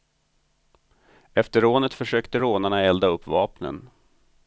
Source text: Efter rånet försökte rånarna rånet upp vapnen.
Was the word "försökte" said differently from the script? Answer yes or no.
no